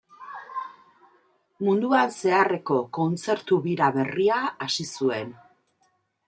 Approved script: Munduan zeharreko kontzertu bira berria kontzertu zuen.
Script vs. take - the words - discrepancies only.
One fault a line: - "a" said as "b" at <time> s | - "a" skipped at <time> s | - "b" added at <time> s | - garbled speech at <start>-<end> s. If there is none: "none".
- "kontzertu" said as "hasi" at 4.7 s